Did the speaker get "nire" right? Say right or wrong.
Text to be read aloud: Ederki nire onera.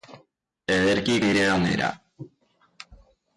right